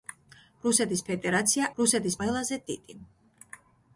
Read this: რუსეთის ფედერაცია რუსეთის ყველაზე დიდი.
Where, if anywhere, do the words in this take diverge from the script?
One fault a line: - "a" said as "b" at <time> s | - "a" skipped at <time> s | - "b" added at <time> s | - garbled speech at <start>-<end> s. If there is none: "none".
none